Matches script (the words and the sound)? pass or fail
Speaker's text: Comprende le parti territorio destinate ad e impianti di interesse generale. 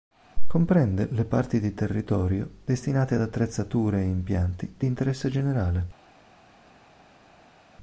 fail